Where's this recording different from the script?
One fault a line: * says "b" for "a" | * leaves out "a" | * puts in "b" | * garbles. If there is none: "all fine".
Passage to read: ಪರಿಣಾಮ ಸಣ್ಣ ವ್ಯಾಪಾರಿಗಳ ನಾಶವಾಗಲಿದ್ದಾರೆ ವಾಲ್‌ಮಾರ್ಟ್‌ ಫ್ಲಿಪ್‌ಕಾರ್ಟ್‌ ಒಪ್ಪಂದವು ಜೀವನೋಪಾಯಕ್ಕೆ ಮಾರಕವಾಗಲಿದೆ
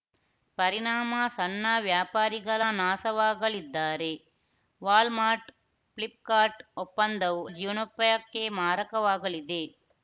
all fine